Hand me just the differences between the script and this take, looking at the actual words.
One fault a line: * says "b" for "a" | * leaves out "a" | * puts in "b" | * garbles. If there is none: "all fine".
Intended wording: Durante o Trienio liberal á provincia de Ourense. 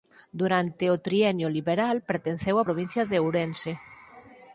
* puts in "pertenceu"